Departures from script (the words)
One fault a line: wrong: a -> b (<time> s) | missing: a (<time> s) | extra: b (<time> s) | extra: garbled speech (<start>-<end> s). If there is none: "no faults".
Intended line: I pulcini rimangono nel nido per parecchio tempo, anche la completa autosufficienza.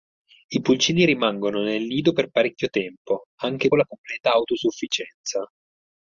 no faults